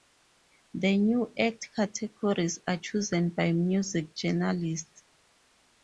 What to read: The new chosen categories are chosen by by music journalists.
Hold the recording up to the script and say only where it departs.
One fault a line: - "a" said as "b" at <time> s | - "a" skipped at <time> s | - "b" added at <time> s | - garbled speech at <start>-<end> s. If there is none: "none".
- "chosen" said as "act" at 1.4 s
- "by" skipped at 3.5 s